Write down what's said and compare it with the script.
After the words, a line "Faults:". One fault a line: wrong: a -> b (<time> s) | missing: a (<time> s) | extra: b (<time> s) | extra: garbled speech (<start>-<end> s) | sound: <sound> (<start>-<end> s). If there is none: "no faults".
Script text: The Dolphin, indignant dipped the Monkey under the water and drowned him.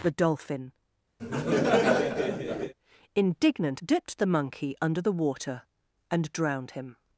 The Dolphin, indignant dipped the Monkey under the water and drowned him.
Faults:
sound: laugh (1.2-2.7 s)